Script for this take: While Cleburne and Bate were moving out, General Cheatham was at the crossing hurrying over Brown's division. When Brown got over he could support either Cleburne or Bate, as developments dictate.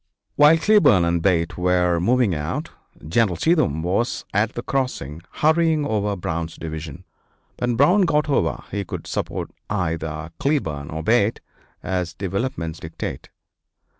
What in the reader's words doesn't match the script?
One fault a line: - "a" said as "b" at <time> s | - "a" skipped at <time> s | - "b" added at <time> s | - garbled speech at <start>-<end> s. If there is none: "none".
none